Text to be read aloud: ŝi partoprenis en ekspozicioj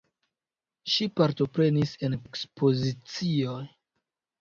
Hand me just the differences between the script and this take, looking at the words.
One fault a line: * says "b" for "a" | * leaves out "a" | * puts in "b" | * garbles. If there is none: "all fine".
all fine